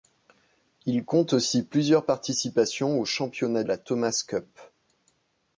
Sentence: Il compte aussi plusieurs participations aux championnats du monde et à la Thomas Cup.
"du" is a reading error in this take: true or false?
true